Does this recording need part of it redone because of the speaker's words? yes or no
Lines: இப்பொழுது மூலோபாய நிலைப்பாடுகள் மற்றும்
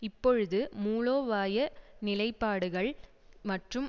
no